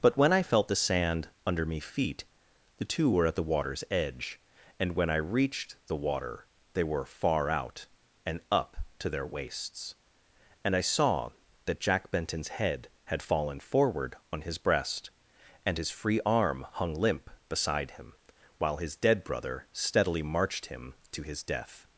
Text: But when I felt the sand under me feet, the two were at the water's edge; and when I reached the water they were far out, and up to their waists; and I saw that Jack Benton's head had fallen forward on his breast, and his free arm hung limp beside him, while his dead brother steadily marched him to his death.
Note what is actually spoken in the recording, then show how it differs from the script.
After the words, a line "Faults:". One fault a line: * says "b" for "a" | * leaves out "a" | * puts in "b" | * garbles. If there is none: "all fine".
But when I felt the sand under me feet, the two were at the water's edge; and when I reached the water they were far out, and up to their waists; and I saw that Jack Benton's head had fallen forward on his breast, and his free arm hung limp beside him, while his dead brother steadily marched him to his death.
Faults:
all fine